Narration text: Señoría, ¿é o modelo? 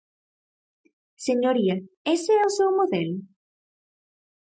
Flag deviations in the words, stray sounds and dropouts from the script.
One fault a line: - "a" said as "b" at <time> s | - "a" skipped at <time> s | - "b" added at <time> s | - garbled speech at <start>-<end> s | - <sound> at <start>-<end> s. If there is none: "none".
- "ese" added at 2.1 s
- "seu" added at 2.6 s